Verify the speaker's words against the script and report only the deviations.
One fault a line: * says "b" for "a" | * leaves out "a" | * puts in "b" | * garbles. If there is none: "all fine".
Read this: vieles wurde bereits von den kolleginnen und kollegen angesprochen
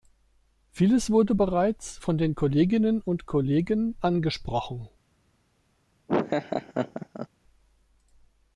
all fine